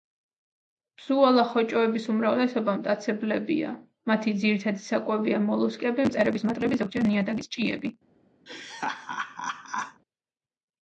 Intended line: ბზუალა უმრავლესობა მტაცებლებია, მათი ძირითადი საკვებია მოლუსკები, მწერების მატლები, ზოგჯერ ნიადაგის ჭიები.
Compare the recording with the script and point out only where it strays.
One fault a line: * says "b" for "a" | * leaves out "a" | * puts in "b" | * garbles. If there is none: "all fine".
* puts in "ხოჭოების"